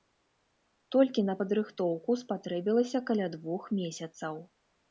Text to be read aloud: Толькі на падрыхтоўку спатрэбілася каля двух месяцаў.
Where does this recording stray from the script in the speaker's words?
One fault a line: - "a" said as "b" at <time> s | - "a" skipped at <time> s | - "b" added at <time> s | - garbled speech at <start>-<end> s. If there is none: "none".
none